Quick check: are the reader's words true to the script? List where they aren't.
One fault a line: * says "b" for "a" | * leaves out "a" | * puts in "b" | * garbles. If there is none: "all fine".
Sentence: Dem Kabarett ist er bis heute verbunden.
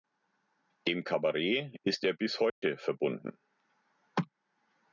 all fine